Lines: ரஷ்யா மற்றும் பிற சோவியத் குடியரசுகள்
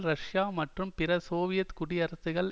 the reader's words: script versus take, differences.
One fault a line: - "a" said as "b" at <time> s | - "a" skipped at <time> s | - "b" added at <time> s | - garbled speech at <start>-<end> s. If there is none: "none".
none